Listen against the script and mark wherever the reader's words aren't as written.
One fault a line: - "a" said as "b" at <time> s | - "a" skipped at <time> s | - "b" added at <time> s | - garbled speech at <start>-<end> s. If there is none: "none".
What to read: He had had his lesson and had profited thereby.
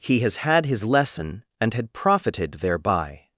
- "had" said as "has" at 0.2 s